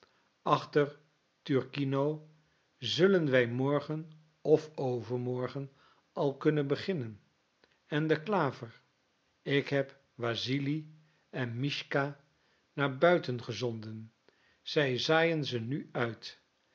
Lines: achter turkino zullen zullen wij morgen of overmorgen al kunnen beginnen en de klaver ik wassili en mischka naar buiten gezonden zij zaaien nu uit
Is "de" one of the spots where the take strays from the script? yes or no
no